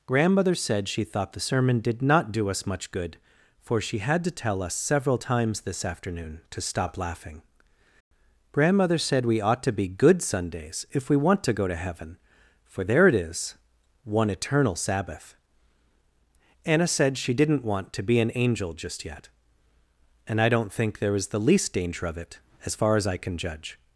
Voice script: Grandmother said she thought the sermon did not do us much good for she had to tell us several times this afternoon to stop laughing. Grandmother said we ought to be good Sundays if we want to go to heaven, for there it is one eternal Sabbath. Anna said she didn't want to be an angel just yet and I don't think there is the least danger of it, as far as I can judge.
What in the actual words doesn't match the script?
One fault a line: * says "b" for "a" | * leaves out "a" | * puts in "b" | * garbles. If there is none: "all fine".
all fine